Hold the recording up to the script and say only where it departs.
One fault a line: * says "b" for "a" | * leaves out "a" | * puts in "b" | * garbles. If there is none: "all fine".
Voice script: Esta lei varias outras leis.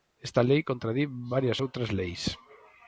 * puts in "contradí"